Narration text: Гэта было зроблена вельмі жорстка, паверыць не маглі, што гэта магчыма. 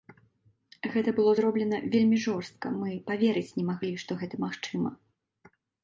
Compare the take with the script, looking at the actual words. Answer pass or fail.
fail